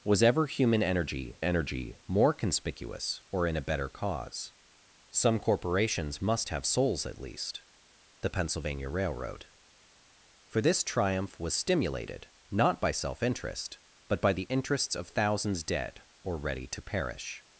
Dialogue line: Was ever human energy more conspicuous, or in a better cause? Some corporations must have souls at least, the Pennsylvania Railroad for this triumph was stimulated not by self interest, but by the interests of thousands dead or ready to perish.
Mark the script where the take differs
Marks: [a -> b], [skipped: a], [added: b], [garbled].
Was ever human energy [added: energy] more conspicuous, or in a better cause? Some corporations must have souls at least, the Pennsylvania Railroad for this triumph was stimulated not by self interest, but by the interests of thousands dead or ready to perish.